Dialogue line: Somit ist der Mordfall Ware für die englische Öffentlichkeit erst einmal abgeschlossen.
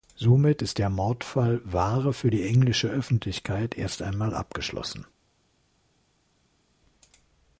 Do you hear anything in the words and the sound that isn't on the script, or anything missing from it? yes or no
no